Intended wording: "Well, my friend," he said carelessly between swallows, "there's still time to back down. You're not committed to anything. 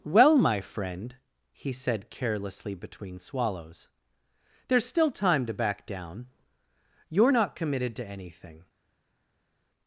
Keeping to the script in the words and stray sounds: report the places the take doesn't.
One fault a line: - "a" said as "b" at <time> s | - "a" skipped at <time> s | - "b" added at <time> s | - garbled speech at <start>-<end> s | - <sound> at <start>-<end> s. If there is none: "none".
none